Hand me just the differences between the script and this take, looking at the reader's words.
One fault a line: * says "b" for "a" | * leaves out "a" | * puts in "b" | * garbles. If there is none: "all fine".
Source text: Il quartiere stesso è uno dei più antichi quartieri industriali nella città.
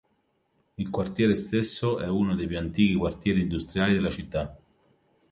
* says "della" for "nella"